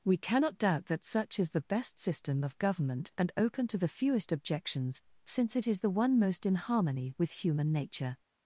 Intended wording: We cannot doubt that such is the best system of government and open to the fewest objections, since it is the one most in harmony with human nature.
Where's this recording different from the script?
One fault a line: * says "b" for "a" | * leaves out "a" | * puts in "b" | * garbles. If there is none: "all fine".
all fine